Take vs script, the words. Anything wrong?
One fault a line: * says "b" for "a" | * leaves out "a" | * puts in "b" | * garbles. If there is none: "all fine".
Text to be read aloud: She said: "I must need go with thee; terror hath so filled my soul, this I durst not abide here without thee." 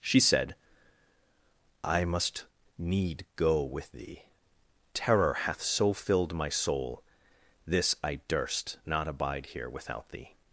all fine